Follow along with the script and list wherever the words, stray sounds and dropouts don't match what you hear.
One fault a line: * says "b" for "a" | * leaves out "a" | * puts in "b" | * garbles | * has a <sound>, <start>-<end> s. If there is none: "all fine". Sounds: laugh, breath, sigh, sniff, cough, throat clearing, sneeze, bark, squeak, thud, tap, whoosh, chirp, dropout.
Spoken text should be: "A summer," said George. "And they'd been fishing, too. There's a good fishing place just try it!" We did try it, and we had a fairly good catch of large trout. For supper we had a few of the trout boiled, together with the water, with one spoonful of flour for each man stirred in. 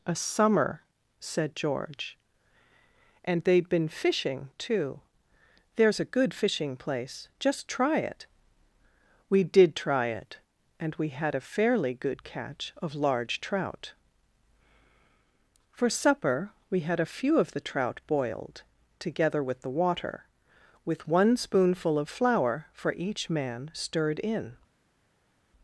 all fine